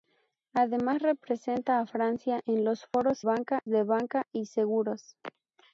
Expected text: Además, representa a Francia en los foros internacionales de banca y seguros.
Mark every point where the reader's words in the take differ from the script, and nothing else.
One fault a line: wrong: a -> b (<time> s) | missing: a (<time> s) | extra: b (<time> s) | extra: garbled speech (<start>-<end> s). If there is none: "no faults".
wrong: internacionales -> banca (3.2 s)